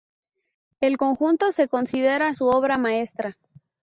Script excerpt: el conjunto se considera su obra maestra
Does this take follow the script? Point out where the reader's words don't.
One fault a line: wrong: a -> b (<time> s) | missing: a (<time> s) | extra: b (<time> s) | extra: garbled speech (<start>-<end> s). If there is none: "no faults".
no faults